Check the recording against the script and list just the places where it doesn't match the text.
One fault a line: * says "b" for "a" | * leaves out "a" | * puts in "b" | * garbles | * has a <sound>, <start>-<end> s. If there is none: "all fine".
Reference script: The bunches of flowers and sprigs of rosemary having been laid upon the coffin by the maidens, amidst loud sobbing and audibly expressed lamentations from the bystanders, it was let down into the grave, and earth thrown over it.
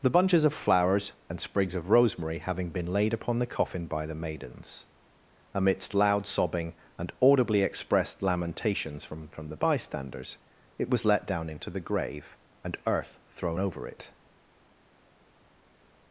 * puts in "from"